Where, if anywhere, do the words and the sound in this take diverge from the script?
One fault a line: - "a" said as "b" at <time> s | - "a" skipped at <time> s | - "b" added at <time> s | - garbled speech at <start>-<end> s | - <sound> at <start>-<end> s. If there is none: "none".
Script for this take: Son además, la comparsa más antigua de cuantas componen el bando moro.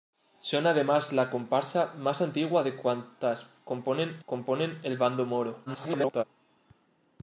- "componen" added at 4.2 s
- garbled speech at 5.7-6.2 s